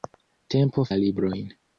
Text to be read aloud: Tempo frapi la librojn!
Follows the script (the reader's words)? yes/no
no